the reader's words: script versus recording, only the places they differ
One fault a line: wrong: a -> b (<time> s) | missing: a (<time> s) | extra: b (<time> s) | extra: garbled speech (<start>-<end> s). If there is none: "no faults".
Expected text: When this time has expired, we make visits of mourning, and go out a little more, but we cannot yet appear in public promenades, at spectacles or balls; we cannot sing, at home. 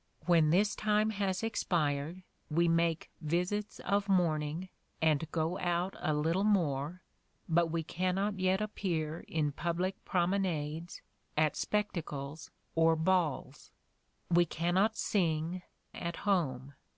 no faults